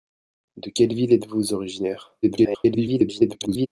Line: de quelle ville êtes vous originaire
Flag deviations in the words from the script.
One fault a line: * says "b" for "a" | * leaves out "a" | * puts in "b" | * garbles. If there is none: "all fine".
* garbles